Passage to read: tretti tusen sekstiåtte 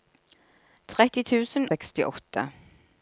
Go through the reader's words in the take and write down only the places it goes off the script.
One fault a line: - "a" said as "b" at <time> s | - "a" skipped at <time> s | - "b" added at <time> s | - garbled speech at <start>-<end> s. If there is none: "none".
none